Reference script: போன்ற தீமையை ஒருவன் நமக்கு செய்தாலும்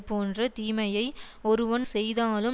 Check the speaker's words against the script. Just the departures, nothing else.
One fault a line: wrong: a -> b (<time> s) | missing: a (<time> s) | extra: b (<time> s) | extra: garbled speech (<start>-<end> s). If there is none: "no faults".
missing: நமக்கு (1.8 s)